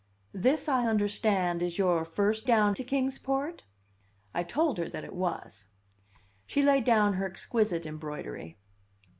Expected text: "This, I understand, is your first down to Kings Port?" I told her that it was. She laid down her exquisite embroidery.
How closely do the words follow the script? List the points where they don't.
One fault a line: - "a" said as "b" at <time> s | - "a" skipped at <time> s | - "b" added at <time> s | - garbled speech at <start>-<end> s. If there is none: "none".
none